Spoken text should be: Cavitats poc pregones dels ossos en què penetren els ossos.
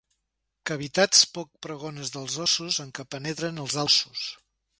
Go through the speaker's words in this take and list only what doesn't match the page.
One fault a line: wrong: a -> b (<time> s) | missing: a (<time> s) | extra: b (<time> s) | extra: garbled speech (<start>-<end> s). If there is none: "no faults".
no faults